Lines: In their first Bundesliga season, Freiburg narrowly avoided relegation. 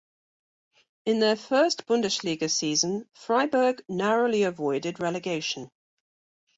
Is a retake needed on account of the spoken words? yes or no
no